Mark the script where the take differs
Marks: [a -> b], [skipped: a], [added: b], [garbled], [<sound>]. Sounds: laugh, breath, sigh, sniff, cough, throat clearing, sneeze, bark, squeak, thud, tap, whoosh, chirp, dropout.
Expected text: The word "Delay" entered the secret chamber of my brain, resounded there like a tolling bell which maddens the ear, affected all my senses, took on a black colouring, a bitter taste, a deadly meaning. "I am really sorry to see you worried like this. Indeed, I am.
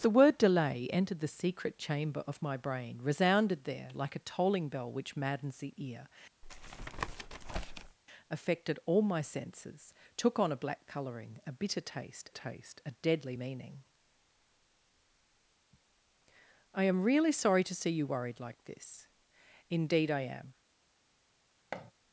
The word "Delay" entered the secret chamber of my brain, resounded there like a tolling bell which maddens the ear, [tap] affected all my senses, took on a black colouring, a bitter taste, [added: taste] a deadly meaning. "I am really sorry to see you worried like this. Indeed, I am. [thud]